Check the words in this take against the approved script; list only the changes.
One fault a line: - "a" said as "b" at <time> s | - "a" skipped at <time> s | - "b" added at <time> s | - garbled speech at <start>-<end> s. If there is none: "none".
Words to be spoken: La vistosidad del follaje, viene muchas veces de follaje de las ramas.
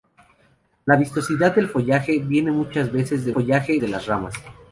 none